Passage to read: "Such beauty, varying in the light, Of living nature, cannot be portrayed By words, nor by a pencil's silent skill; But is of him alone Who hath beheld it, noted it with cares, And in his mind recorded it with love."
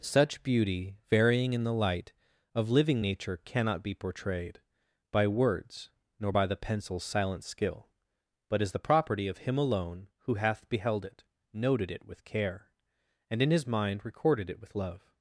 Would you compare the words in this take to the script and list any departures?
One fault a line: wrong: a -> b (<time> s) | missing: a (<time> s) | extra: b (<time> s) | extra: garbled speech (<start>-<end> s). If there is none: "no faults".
wrong: a -> the (6.4 s)
extra: the property (8.7 s)
wrong: cares -> care (12.2 s)